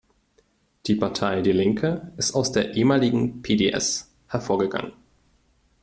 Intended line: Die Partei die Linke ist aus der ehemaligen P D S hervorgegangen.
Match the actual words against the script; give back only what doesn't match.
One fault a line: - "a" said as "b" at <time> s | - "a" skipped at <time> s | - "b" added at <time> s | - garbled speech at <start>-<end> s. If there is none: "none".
none